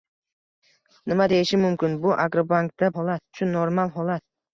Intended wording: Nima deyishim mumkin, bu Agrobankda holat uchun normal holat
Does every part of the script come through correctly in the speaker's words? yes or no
yes